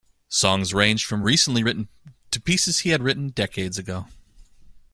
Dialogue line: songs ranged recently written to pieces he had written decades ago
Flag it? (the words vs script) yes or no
yes